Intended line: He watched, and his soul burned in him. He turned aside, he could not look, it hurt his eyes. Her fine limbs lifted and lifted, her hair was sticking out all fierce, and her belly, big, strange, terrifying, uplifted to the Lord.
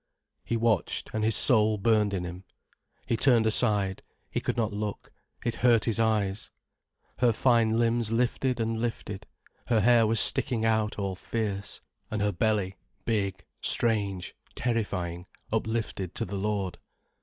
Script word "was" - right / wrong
right